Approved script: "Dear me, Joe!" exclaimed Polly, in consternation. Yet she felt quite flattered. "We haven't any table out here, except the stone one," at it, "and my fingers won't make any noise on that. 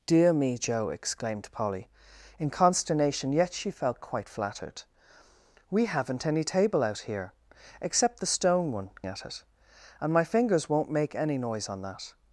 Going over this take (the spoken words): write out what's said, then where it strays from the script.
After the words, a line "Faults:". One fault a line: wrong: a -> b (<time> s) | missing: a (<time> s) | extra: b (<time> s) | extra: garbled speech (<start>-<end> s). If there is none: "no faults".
"Dear me, Joe!" exclaimed Polly, in consternation. Yet she felt quite flattered. "We haven't any table out here, except the stone one," at it, "and my fingers won't make any noise on that.
Faults:
no faults